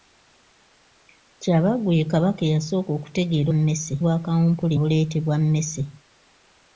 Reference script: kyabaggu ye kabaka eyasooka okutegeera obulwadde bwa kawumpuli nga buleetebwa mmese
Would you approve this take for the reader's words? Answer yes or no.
no